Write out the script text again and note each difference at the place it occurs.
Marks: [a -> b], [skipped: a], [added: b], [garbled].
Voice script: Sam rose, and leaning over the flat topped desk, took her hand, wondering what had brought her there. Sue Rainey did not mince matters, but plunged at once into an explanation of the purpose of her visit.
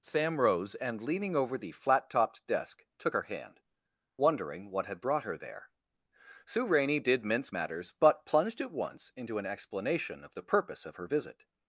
Sam rose, and leaning over the flat topped desk, took her hand, wondering what had brought her there. Sue Rainey did [skipped: not] mince matters, but plunged at once into an explanation of the purpose of her visit.